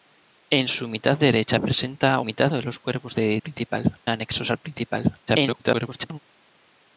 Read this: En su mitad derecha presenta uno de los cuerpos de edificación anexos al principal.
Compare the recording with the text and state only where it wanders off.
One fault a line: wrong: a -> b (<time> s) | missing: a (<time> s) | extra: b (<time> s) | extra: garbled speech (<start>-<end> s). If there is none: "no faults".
wrong: uno -> mitad (2.2 s)
wrong: edificación -> principal (3.4 s)
extra: garbled speech (5.3-6.2 s)